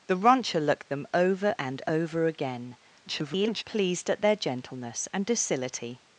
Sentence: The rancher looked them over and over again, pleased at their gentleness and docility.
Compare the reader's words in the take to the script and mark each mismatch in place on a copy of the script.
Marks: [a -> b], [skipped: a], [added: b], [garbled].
The rancher looked them over and over again, [garbled] pleased at their gentleness and docility.